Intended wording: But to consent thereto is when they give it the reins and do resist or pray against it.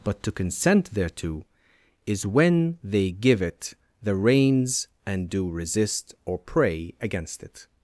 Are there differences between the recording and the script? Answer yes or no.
no